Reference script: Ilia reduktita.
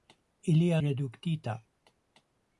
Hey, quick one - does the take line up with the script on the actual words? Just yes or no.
yes